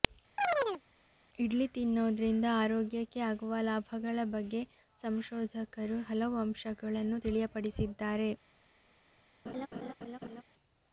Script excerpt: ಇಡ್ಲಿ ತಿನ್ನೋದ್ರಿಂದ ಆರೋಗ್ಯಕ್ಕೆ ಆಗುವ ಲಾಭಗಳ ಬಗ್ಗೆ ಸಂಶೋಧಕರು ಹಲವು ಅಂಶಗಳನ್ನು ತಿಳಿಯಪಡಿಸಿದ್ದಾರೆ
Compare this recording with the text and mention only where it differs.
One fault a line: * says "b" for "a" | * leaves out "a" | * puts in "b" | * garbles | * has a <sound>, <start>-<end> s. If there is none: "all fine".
* has a chirp, 0.4-0.8 s
* has a laugh, 9.4-10.4 s